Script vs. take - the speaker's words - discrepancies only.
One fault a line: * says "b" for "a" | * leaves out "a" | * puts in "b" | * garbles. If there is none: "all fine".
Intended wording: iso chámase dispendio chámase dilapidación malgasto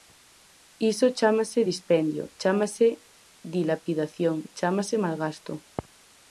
* puts in "chámase"